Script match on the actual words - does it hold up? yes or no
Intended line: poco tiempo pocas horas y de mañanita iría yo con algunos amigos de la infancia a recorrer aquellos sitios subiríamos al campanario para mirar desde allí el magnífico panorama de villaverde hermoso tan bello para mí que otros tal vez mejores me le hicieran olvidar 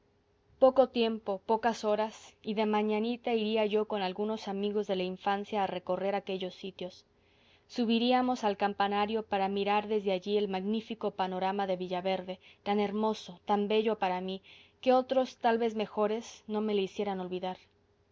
no